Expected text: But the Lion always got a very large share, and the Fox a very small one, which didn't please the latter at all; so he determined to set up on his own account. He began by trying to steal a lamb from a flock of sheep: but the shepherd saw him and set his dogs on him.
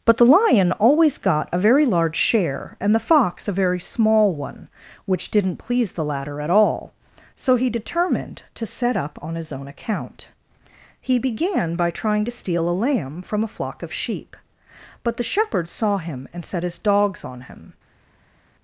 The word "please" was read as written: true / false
true